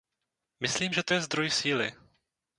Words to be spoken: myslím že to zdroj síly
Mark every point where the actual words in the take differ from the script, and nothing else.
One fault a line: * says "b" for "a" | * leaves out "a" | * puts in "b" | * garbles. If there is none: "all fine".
* puts in "je"